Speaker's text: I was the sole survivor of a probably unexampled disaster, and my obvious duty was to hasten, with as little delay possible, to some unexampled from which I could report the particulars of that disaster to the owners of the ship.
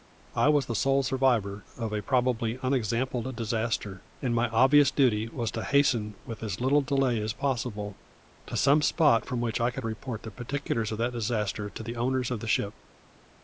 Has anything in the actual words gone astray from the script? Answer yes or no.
yes